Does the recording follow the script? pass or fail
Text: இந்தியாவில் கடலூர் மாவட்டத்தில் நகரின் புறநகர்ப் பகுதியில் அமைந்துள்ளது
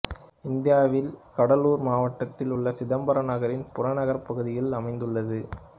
fail